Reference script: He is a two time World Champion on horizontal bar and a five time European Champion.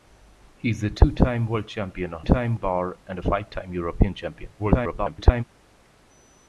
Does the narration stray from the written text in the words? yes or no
yes